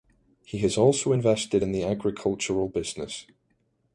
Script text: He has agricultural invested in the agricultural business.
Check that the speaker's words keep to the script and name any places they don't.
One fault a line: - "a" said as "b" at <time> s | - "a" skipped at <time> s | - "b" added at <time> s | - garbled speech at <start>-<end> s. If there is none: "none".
- "agricultural" said as "also" at 0.8 s